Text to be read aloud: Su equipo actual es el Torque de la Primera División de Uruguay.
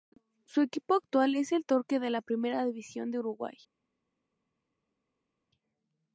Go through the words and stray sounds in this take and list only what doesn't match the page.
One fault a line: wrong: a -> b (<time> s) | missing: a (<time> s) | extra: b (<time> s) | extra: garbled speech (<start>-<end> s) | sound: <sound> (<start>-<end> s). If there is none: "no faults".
no faults